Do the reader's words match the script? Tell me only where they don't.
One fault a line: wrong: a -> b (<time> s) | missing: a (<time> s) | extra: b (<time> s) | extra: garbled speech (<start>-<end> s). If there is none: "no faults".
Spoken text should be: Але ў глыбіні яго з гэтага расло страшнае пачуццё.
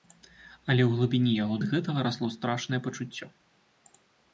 no faults